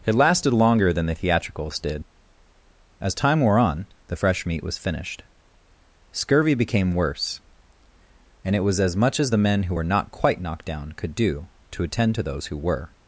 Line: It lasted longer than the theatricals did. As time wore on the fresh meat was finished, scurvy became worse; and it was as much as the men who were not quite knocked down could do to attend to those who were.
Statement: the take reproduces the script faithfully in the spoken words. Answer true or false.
true